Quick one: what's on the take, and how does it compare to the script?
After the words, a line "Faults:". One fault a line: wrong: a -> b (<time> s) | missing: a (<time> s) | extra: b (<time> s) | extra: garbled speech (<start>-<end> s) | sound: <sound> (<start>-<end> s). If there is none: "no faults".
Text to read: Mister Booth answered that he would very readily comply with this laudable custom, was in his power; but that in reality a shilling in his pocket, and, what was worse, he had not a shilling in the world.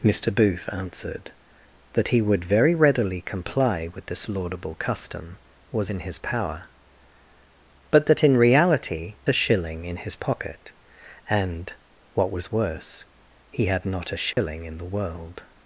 Mister Booth answered that he would very readily comply with this laudable custom, was in his power; but that in reality a shilling in his pocket, and, what was worse, he had not a shilling in the world.
Faults:
sound: dropout (14.3-14.4 s)